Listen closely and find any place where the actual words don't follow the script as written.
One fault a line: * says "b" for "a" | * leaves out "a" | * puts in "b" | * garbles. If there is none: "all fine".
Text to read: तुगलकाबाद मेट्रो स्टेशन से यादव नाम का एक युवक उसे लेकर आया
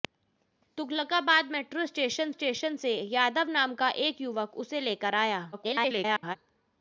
* puts in "स्टेशन"
* garbles